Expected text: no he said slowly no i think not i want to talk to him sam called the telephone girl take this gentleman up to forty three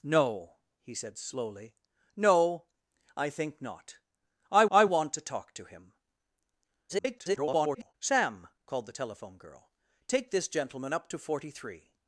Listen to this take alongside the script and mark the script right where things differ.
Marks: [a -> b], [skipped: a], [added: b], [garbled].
no he said slowly no i think not i [added: i] want to talk to him [garbled] sam called the telephone girl take this gentleman up to forty three